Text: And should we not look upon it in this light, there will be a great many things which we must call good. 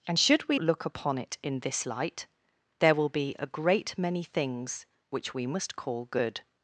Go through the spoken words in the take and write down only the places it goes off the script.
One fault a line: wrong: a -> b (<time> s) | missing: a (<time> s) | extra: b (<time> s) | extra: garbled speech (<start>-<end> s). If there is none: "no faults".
missing: not (0.6 s)